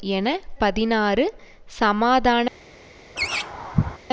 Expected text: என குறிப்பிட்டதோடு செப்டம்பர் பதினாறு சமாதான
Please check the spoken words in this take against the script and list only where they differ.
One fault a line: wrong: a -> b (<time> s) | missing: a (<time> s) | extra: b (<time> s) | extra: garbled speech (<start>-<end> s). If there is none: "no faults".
missing: குறிப்பிட்டதோடு செப்டம்பர் (0.3 s)